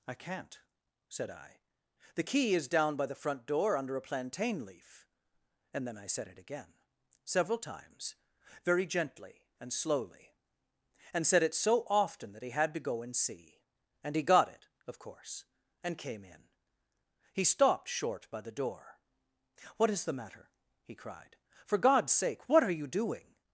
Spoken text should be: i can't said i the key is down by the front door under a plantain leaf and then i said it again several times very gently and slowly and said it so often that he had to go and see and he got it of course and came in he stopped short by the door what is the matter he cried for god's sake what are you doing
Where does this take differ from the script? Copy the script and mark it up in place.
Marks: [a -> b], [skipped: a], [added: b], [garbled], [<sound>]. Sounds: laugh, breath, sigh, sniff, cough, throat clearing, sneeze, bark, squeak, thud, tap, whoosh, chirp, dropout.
i can't said i the key is down by the front door under a plantain leaf and then i said it again several times very gently and slowly and said it so often that he had to go and see and he got it of course and came in he stopped short by the door what is the matter he cried for god's sake what are you doing